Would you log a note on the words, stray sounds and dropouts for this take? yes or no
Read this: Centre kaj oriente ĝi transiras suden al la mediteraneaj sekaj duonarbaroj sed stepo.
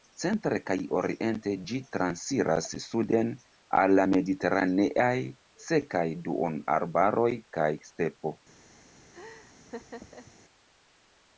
yes